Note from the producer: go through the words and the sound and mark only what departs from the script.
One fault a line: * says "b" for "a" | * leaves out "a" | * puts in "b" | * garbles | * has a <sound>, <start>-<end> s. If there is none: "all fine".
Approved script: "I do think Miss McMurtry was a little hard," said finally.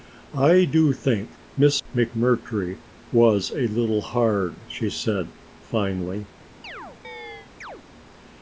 * puts in "she"
* has a chirp, 6.6-7.8 s